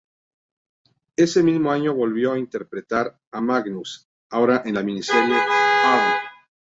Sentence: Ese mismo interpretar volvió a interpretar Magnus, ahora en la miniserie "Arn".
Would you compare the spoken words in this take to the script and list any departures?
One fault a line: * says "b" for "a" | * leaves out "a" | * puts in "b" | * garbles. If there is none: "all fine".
* says "año" for "interpretar"
* puts in "a"